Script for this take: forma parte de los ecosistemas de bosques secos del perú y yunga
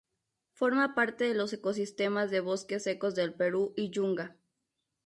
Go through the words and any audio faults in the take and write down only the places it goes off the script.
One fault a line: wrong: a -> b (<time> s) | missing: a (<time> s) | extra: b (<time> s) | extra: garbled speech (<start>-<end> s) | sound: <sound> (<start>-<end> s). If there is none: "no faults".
no faults